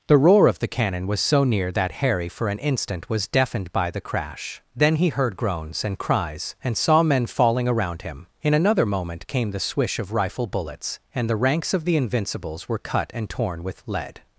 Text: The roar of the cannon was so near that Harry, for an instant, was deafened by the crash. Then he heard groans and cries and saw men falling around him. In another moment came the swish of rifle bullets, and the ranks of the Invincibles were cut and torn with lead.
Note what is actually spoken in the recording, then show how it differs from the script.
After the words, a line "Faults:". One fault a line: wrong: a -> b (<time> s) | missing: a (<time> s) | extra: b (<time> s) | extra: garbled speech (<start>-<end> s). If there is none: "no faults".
The roar of the cannon was so near that Harry, for an instant, was deafened by the crash. Then he heard groans and cries and saw men falling around him. In another moment came the swish of rifle bullets, and the ranks of the Invincibles were cut and torn with lead.
Faults:
no faults